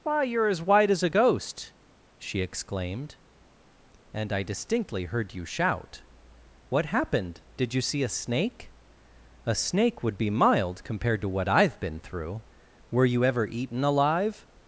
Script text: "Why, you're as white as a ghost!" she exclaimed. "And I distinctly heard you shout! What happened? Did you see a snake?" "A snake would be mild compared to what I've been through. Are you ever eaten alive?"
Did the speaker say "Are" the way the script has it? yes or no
no